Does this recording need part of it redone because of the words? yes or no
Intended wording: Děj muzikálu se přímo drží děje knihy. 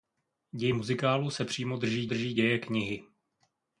yes